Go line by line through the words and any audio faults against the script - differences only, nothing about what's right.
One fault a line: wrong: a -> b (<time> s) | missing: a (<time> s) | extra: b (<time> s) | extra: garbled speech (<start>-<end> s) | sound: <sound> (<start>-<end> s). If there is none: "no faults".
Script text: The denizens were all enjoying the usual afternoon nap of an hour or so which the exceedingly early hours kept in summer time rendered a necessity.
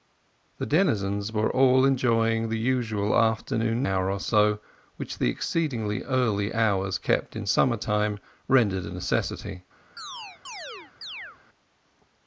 missing: nap of an (3.9 s)
sound: chirp (10.0-11.4 s)